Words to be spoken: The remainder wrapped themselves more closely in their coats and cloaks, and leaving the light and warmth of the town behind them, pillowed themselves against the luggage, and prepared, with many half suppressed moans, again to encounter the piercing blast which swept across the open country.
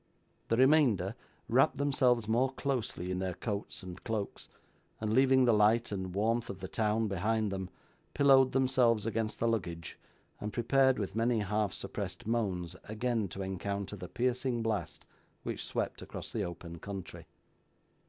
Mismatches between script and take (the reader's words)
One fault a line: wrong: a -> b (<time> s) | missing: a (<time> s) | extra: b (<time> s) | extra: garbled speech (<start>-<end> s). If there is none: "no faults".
no faults